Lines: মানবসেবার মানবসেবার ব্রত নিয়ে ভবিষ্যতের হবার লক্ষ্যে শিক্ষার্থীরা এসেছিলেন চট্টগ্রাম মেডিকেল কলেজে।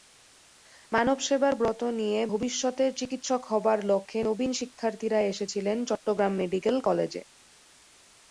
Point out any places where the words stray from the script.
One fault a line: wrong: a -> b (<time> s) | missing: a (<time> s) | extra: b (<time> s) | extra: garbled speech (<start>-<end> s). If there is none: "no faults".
missing: মানবসেবার (1.5 s)
extra: চিকিৎসক (3.0 s)
extra: নবীন (4.3 s)